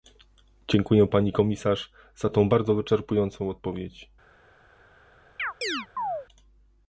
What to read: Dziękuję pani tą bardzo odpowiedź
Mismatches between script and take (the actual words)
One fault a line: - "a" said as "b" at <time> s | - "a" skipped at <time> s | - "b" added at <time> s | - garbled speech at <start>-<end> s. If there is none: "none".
- "komisarz za" added at 1.3 s
- "wyczerpującą" added at 2.8 s